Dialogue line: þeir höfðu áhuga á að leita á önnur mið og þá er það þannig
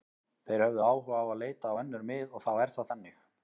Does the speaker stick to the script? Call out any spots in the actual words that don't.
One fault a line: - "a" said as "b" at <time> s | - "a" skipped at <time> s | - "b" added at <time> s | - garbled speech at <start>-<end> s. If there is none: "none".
none